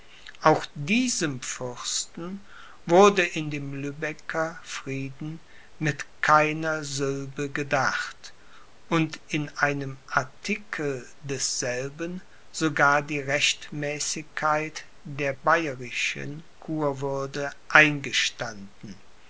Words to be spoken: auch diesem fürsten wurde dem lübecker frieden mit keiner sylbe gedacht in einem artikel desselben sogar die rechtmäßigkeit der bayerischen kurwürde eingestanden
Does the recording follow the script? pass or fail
fail